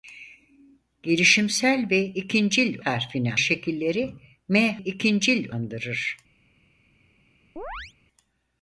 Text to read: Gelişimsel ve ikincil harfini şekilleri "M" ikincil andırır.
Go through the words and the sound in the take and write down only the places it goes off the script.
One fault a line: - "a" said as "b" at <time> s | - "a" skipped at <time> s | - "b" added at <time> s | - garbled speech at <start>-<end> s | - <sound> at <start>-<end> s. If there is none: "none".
- chirp at 7.6-7.9 s